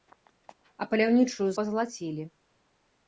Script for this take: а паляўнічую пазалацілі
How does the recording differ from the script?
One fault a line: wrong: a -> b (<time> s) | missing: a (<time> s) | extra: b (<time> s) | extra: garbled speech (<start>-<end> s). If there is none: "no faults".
no faults